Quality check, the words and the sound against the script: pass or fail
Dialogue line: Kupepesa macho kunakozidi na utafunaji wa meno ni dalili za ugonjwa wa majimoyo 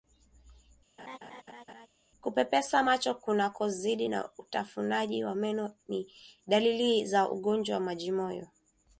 fail